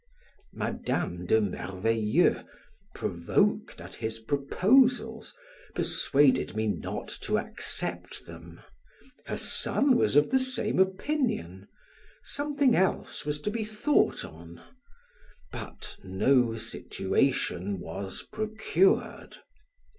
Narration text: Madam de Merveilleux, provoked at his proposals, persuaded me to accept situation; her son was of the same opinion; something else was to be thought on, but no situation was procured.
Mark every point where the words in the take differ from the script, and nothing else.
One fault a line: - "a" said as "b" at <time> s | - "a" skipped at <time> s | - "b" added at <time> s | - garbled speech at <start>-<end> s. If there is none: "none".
- "not" added at 6.7 s
- "situation" said as "them" at 8.2 s